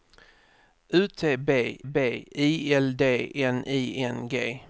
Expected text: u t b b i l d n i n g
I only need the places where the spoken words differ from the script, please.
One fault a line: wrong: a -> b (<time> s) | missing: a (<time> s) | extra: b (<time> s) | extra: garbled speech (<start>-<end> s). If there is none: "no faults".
no faults